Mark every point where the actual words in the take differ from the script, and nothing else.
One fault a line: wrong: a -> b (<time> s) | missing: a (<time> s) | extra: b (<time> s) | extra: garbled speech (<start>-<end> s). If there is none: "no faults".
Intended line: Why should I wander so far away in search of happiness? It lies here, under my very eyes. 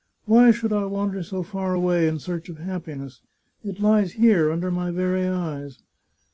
no faults